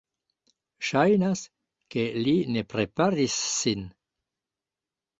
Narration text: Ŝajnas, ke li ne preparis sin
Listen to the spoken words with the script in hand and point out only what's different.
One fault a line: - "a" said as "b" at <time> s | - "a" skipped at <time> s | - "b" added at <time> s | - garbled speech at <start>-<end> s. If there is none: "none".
none